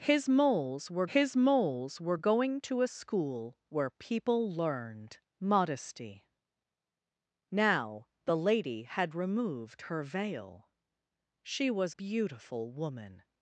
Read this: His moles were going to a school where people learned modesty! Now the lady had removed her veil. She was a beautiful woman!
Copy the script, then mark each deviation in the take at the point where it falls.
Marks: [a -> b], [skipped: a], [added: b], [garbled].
His moles were [added: his moles were] going to a school where people learned modesty! Now the lady had removed her veil. She was [skipped: a] beautiful woman!